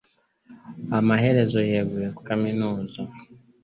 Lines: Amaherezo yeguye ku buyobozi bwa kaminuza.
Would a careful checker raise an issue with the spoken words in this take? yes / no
yes